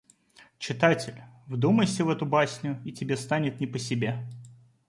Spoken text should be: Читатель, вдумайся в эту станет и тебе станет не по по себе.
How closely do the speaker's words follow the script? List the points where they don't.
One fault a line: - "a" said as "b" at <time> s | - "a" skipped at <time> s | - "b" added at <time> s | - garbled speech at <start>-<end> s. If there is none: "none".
- "станет" said as "басню" at 2.2 s
- "по" skipped at 3.8 s